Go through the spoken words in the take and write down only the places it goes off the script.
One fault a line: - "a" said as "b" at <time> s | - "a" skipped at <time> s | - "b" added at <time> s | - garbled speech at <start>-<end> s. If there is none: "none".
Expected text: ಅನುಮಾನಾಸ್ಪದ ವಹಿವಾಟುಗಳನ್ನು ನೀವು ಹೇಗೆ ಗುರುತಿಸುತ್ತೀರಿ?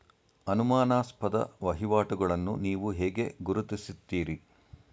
none